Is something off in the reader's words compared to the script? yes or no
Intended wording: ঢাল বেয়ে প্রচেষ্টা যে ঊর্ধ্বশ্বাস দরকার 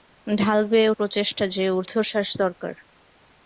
no